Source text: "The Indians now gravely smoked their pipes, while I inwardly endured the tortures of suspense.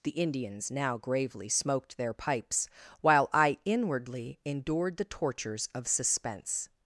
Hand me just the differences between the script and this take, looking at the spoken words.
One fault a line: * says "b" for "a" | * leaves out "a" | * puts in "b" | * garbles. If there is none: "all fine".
all fine